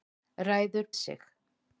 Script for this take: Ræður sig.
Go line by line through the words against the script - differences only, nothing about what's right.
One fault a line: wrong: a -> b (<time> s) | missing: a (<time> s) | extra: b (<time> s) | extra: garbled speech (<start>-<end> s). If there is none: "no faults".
no faults